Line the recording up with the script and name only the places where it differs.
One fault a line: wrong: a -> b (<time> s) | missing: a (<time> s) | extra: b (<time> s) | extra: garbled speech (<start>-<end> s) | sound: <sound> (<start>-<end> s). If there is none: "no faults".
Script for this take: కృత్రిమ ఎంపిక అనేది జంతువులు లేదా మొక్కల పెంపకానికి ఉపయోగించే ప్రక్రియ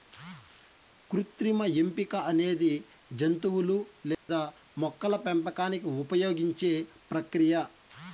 sound: dropout (4.1-4.3 s)